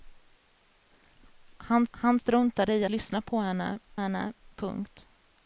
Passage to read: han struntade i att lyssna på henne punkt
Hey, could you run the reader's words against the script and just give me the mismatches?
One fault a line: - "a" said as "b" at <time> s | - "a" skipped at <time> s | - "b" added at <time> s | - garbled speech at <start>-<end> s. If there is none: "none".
- "han" added at 1.9 s
- "att" skipped at 2.8 s
- "henne" added at 3.9 s